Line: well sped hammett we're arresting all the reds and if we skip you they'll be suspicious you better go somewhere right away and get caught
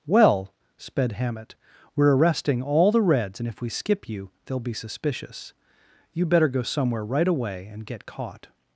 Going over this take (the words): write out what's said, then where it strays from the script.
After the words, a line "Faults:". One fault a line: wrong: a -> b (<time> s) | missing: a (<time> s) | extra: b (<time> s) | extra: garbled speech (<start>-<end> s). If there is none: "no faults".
well sped hammett we're arresting all the reds and if we skip you they'll be suspicious you better go somewhere right away and get caught
Faults:
no faults